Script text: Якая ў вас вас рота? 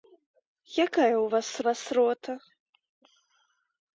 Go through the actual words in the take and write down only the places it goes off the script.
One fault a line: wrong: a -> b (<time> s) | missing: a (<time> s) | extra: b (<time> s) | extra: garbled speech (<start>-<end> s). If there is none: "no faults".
no faults